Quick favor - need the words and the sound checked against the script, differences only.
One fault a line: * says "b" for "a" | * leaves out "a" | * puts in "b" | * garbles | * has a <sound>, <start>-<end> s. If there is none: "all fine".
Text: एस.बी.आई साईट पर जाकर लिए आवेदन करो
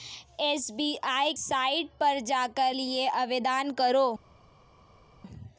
all fine